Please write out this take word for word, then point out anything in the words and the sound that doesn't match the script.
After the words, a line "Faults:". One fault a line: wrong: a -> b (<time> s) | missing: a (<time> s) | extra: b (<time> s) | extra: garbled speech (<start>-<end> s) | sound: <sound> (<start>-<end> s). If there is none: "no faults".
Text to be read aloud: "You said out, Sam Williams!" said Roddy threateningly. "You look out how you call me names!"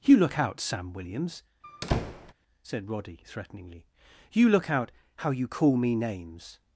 "You look out, Sam Williams!" said Roddy threateningly. "You look out how you call me names!"
Faults:
wrong: said -> look (0.2 s)
sound: squeak (1.6-2.3 s)